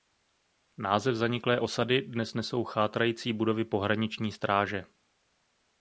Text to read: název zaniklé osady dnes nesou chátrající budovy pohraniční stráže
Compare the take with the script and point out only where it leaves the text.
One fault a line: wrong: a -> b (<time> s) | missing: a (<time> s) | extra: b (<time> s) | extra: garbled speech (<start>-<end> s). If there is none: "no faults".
no faults